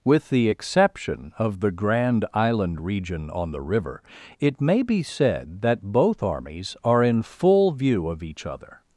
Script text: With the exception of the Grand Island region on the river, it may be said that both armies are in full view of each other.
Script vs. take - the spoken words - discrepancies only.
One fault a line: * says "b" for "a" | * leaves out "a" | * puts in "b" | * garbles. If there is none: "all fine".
all fine